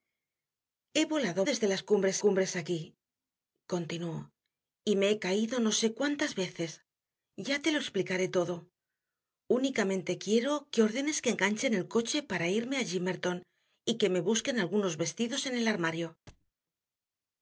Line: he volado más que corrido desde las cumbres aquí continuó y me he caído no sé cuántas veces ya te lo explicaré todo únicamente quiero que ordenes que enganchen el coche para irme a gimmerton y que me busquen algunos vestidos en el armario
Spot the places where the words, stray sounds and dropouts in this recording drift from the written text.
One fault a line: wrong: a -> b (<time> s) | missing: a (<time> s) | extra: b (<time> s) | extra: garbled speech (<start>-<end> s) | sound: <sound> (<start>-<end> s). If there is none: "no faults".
missing: más que corrido (1.4 s)
extra: cumbres (2.2 s)
sound: thud (16.3-16.5 s)